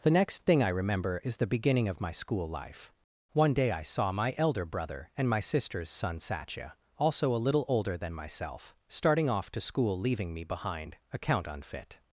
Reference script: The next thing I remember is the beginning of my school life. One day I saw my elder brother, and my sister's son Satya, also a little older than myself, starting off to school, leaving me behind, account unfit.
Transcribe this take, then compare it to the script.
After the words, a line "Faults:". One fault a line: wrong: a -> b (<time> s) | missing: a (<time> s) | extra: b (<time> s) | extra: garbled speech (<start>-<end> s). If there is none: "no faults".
The next thing I remember is the beginning of my school life. One day I saw my elder brother, and my sister's son Satya, also a little older than myself, starting off to school, leaving me behind, account unfit.
Faults:
no faults